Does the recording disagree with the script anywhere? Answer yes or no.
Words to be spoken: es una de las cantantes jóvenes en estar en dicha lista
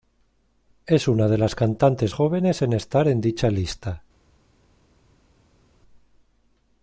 no